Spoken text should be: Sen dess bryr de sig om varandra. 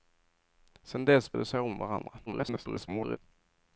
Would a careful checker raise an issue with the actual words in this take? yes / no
yes